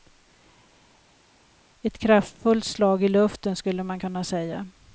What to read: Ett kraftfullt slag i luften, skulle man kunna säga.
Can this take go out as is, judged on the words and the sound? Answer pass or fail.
pass